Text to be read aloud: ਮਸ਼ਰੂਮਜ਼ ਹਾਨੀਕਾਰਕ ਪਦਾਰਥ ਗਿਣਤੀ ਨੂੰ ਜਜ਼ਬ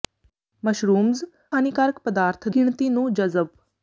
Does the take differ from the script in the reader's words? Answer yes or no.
no